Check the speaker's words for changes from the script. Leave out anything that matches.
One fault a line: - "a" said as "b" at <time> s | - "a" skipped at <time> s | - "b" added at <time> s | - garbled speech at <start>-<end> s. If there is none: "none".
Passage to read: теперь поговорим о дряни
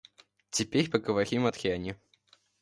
none